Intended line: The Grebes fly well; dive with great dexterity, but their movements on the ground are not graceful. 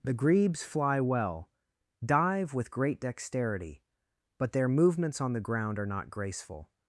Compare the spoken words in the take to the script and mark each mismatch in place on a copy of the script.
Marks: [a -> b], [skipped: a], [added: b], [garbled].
The Grebes fly well; dive with great dexterity, but their movements on the ground are not graceful.